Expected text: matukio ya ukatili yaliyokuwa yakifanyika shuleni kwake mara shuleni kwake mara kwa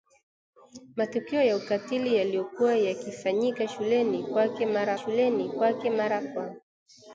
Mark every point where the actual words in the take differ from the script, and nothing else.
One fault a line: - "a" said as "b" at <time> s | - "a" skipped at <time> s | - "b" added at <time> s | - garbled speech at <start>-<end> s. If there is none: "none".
none